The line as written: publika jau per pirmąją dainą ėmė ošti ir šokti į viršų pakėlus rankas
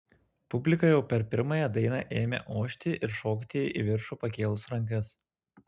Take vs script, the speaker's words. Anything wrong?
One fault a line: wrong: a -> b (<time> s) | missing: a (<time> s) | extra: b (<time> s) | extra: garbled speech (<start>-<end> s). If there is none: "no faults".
no faults